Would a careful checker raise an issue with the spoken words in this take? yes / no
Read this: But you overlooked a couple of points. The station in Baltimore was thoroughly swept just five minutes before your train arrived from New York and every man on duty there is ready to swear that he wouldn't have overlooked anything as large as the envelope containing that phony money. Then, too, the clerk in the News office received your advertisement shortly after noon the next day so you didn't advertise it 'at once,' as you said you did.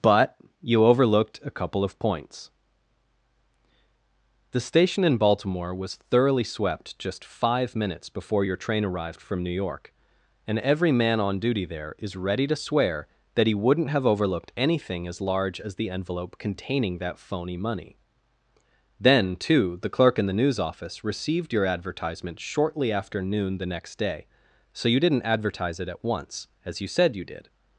no